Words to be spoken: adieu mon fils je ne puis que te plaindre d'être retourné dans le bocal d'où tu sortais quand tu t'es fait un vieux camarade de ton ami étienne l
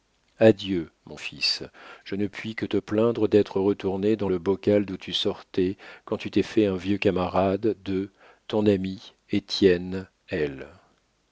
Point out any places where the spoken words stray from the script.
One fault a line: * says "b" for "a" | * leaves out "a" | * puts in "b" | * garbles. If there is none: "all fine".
all fine